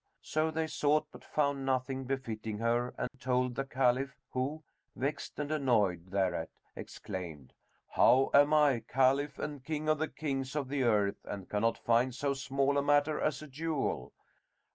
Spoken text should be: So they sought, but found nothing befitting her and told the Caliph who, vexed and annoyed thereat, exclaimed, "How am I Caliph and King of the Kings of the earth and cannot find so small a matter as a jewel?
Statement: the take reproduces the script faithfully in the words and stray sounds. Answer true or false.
false